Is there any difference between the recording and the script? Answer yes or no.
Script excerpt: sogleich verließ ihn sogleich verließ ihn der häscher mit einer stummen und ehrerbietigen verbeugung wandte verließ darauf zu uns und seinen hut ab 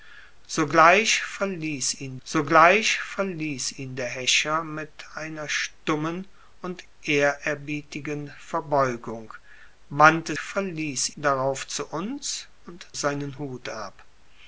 no